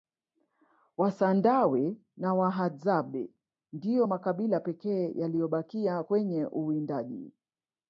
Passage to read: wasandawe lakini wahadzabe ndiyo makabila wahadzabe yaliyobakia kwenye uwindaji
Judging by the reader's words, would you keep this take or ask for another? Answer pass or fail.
fail